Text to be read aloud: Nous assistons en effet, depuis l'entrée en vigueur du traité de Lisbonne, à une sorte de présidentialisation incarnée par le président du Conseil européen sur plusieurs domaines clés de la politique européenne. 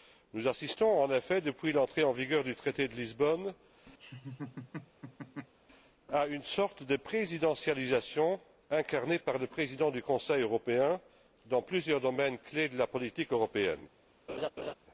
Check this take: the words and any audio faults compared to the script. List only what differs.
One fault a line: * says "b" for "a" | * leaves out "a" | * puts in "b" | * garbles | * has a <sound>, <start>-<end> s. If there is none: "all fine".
* has a laugh, 4.0-5.5 s
* says "dans" for "sur"
* has a laugh, 14.3-14.7 s